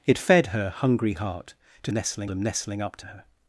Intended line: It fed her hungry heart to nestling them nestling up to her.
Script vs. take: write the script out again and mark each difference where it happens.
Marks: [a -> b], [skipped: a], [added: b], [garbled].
It fed her hungry heart to nestling them nestling up to her.